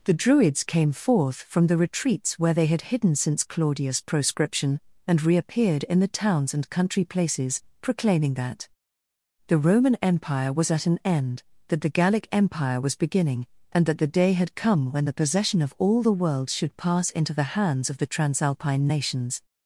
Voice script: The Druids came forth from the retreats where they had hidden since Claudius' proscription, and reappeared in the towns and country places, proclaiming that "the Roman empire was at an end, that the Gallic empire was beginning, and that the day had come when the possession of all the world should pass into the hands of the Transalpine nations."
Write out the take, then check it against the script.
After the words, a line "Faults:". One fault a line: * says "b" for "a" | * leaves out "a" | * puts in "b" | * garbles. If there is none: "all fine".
The Druids came forth from the retreats where they had hidden since Claudius' proscription, and reappeared in the towns and country places, proclaiming that "the Roman empire was at an end, that the Gallic empire was beginning, and that the day had come when the possession of all the world should pass into the hands of the Transalpine nations."
Faults:
all fine